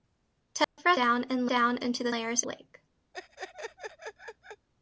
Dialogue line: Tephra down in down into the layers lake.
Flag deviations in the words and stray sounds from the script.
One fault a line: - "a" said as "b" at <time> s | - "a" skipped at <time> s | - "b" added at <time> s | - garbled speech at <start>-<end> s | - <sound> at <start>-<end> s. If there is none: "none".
- dropout at 0.6-0.8 s
- laugh at 3.1-4.7 s